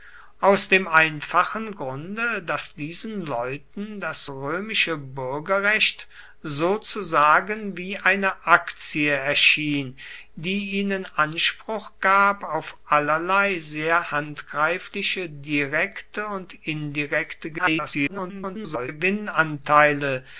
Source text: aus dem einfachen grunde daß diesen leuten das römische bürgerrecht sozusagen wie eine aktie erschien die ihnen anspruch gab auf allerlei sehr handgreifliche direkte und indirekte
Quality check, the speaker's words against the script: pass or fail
fail